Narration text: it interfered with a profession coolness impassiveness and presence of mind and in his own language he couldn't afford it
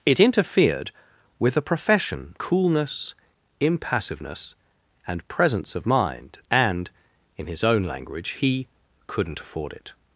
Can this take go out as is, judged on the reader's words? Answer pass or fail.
pass